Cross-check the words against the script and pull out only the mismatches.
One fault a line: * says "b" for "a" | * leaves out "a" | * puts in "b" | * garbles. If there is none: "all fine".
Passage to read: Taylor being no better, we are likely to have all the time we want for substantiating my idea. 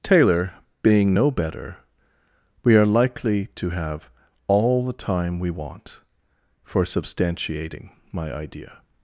all fine